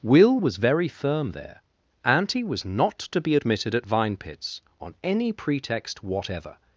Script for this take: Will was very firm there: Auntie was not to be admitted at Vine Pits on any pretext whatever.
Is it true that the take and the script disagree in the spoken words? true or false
false